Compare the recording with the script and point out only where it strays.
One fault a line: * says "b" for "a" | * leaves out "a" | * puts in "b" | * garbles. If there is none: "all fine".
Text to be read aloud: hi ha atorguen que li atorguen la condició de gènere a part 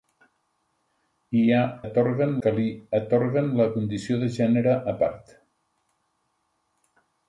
all fine